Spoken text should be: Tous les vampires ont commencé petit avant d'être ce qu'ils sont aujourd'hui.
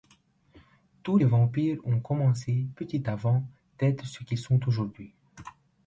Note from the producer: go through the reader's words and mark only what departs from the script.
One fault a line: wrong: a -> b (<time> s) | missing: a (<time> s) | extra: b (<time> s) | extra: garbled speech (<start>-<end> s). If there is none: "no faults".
missing: les (1.2 s)